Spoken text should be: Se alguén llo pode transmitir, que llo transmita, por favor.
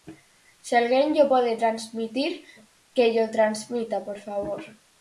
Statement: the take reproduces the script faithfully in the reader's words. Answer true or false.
true